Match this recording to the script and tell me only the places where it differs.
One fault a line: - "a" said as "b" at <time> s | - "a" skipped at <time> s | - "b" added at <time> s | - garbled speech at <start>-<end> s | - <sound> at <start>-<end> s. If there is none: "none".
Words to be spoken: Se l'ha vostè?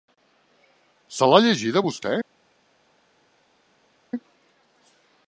- "llegida" added at 1.4 s